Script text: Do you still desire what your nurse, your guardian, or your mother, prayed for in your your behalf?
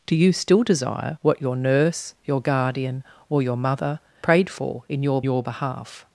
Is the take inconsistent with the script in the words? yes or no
no